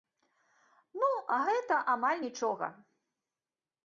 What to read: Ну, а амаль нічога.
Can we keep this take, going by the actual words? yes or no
no